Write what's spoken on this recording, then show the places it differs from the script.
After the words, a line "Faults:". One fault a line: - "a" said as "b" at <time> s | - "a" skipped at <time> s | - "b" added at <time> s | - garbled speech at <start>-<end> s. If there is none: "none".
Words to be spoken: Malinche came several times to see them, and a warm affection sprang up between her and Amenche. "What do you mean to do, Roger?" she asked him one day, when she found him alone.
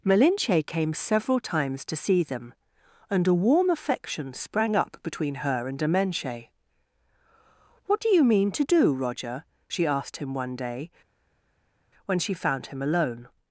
Malinche came several times to see them, and a warm affection sprang up between her and Amenche. "What do you mean to do, Roger?" she asked him one day, when she found him alone.
Faults:
none